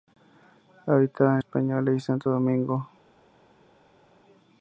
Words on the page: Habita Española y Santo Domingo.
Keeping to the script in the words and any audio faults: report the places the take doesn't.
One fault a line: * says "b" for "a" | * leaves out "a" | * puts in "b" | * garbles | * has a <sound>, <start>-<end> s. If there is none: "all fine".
all fine